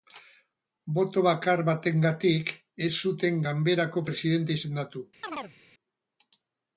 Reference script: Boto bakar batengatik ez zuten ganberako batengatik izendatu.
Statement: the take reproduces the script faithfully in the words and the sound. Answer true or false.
false